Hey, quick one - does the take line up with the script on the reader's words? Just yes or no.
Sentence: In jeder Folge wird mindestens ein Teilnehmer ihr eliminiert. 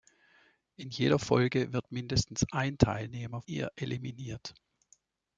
yes